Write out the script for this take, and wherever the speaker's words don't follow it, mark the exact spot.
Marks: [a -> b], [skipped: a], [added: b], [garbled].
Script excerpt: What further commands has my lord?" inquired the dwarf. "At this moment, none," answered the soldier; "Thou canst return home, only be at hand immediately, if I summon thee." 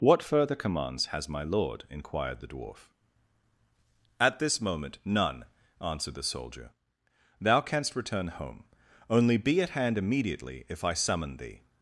What further commands has my lord?" inquired the dwarf. "At this moment, none," answered the soldier; "Thou canst return home, only be at hand immediately, if I summon thee."